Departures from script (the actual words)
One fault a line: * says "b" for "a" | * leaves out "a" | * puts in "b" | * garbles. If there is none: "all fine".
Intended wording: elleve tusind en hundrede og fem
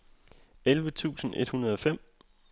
* says "et" for "en"